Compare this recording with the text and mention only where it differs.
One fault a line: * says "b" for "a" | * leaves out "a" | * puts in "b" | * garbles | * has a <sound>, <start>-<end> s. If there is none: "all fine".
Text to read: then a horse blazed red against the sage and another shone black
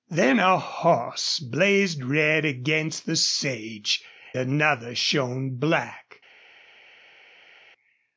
* leaves out "and"